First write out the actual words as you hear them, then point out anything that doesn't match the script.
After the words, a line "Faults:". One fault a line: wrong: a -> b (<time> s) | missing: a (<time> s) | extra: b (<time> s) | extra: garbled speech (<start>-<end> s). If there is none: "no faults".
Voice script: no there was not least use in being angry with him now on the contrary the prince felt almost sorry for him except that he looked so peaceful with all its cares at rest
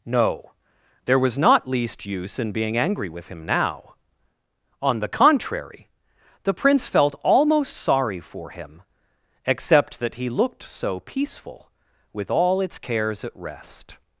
no there was not least use in being angry with him now on the contrary the prince felt almost sorry for him except that he looked so peaceful with all its cares at rest
Faults:
no faults